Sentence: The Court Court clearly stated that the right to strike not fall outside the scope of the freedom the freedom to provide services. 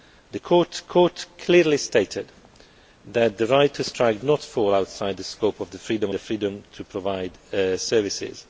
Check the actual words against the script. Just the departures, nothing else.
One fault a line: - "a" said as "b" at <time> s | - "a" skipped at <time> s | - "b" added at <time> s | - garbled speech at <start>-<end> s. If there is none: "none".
none